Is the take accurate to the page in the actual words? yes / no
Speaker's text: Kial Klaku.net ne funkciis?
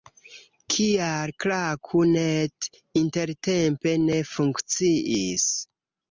no